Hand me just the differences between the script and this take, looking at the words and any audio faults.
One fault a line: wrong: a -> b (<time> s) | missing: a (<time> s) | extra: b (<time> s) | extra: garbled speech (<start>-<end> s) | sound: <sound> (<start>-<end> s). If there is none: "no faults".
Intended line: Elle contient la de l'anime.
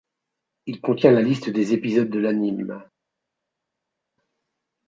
wrong: Elle -> Il (0.7 s)
extra: liste des épisodes (1.2 s)